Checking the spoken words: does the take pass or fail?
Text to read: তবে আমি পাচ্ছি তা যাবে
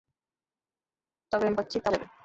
pass